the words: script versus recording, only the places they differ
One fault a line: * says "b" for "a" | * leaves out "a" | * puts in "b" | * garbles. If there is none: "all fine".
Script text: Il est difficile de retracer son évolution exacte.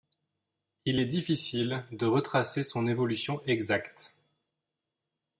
all fine